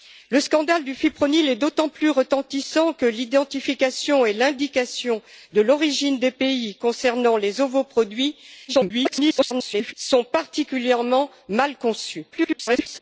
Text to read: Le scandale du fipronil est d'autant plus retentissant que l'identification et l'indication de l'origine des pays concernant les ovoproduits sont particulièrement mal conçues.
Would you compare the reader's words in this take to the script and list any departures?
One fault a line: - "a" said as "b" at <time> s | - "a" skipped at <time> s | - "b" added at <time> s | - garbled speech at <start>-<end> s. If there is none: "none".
- garbled speech at 8.7-9.9 s
- garbled speech at 12.3-13.0 s